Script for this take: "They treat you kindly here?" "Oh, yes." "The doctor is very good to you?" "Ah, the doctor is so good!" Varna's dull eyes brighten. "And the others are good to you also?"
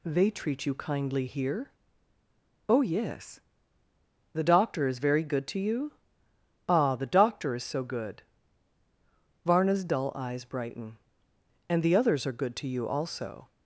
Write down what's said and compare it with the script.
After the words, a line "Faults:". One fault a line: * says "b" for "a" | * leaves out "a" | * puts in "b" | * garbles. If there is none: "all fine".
"They treat you kindly here?" "Oh, yes." "The doctor is very good to you?" "Ah, the doctor is so good!" Varna's dull eyes brighten. "And the others are good to you also?"
Faults:
all fine